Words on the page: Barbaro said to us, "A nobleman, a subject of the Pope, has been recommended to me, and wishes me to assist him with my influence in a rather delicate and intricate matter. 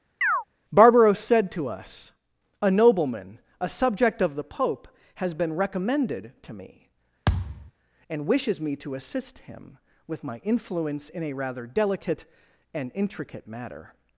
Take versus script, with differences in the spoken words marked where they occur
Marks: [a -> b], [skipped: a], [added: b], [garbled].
Barbaro said to us, "A nobleman, a subject of the Pope, has been recommended to me, and wishes me to assist him with my influence in a rather delicate and intricate matter.